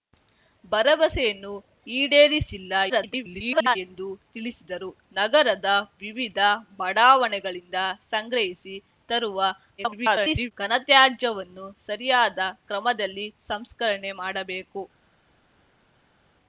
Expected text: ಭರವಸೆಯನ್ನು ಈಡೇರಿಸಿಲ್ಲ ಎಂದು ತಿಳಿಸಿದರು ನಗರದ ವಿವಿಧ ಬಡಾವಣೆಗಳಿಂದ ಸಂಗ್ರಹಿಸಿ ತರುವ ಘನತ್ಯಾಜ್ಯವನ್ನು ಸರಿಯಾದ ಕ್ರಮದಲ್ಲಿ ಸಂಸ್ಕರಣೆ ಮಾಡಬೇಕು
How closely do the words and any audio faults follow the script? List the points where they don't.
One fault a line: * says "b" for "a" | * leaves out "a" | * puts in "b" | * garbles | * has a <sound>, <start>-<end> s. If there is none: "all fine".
* garbles
* garbles